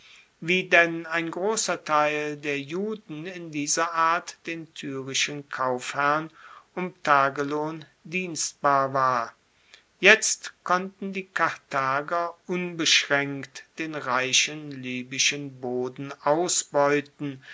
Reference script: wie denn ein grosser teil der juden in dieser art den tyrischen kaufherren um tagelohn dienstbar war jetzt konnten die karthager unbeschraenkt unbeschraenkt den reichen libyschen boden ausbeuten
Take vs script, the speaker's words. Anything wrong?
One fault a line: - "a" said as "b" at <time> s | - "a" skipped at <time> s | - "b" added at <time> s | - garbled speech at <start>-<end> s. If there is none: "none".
- "unbeschraenkt" skipped at 13.6 s